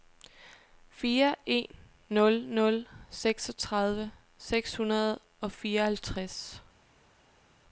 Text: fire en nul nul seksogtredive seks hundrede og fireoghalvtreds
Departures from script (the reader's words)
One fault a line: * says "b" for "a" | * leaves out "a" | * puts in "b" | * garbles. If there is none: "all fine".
all fine